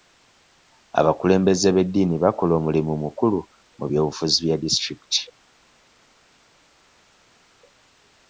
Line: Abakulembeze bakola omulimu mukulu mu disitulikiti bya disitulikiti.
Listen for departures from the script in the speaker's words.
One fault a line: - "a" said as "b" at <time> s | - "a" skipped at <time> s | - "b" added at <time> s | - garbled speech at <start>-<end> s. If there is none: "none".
- "b'eddiini" added at 1.8 s
- "disitulikiti" said as "by'obufuzi" at 3.9 s